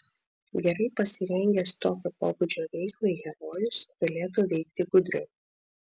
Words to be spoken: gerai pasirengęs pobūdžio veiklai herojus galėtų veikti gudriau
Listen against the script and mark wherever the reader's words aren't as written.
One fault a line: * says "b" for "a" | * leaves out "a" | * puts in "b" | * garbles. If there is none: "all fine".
* puts in "tokio"